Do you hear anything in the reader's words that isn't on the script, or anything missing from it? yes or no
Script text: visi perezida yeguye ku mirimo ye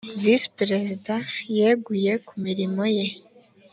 no